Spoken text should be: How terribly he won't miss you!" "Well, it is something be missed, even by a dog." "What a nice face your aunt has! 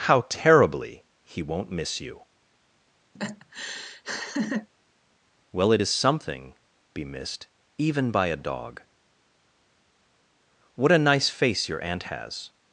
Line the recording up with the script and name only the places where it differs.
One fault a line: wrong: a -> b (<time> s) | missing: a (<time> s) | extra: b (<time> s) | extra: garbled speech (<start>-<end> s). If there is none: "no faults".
no faults